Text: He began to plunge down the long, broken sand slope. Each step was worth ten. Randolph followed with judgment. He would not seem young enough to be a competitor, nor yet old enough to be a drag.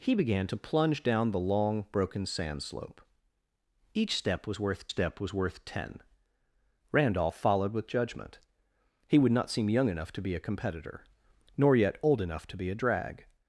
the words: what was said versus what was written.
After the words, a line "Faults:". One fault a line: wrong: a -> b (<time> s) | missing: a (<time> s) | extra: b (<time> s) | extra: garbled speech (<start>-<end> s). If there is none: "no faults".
He began to plunge down the long, broken sand slope. Each step was worth step was worth ten. Randolph followed with judgment. He would not seem young enough to be a competitor, nor yet old enough to be a drag.
Faults:
extra: step was worth (4.9 s)